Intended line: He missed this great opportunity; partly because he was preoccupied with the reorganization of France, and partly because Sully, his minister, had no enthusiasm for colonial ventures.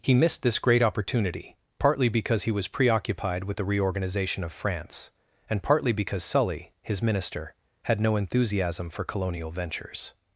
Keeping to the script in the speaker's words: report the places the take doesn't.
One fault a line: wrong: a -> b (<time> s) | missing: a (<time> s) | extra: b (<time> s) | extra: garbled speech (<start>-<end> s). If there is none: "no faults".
no faults